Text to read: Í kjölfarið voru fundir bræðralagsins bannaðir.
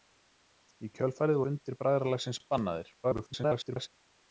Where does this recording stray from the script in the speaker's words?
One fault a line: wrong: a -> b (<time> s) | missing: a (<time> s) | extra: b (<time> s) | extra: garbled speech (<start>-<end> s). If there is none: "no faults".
missing: voru (1.4 s)
extra: garbled speech (3.0-3.9 s)